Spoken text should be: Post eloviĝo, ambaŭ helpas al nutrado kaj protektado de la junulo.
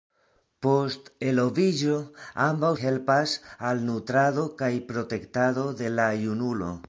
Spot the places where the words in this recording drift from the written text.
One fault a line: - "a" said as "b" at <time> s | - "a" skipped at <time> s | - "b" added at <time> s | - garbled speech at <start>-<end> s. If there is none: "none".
none